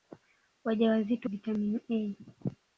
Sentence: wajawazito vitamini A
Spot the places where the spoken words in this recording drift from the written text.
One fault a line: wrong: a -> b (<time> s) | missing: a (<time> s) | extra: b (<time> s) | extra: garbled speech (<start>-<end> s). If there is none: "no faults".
no faults